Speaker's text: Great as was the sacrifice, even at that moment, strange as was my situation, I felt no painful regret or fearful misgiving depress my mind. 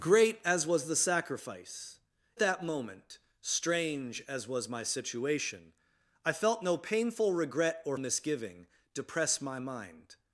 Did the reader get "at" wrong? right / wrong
wrong